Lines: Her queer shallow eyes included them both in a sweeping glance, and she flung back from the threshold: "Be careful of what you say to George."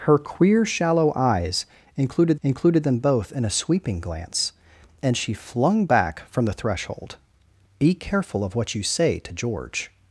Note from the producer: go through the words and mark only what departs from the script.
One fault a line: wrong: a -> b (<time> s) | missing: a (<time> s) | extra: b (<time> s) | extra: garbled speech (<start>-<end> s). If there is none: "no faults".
extra: included (2.4 s)